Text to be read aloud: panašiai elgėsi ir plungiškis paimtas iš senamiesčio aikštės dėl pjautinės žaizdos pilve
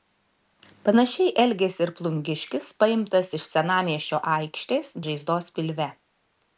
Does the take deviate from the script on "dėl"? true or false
true